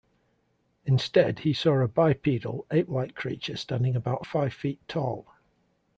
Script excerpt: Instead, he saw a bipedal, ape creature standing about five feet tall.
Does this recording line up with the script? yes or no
no